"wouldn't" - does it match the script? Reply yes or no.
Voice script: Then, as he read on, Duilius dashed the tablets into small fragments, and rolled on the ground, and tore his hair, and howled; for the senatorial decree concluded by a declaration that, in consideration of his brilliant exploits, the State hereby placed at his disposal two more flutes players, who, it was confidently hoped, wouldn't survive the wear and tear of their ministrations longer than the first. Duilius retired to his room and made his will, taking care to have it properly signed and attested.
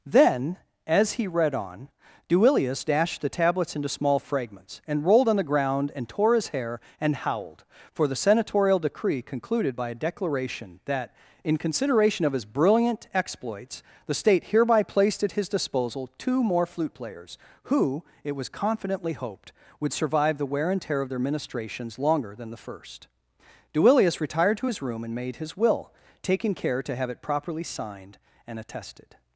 no